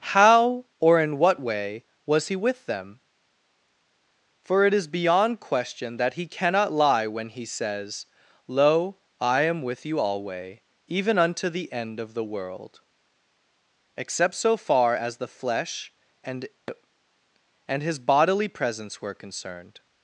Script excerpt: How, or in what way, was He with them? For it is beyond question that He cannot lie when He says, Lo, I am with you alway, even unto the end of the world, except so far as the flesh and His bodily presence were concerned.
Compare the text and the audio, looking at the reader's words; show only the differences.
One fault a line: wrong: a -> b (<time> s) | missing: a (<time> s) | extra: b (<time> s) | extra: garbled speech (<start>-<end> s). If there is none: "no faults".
extra: and (17.7 s)